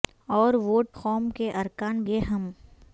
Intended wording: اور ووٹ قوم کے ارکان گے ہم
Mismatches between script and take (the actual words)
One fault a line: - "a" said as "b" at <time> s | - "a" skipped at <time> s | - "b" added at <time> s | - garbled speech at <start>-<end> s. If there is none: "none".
none